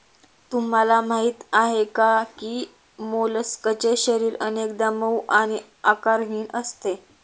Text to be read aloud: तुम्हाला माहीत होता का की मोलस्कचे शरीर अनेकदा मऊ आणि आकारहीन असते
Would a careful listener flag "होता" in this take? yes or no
yes